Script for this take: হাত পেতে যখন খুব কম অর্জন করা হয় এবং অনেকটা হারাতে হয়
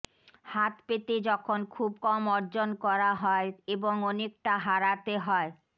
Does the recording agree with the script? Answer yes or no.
yes